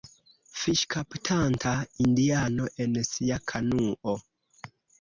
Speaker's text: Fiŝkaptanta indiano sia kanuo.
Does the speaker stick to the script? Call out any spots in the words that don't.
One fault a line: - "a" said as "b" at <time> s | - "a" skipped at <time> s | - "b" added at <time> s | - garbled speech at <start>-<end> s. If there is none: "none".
- "en" added at 2.9 s